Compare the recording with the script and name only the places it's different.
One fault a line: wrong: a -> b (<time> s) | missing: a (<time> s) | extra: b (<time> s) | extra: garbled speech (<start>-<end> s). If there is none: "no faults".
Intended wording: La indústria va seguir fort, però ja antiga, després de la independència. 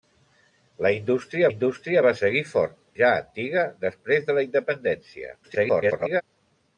extra: indústria (1.5 s)
missing: però (2.8 s)
extra: garbled speech (5.4-6.2 s)